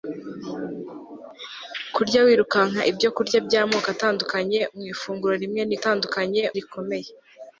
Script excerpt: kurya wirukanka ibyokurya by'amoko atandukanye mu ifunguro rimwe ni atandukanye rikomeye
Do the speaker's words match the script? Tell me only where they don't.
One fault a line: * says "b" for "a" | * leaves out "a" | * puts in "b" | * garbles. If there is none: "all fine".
all fine